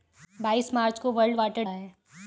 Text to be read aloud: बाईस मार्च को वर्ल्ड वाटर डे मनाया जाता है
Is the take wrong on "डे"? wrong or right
wrong